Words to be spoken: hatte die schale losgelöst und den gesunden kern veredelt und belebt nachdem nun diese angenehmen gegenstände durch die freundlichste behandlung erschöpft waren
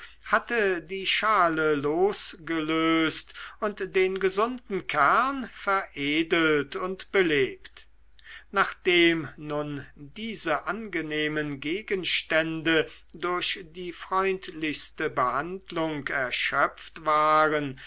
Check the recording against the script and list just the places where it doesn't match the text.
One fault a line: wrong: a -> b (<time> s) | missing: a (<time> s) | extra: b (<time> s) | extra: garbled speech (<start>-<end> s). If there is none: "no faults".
no faults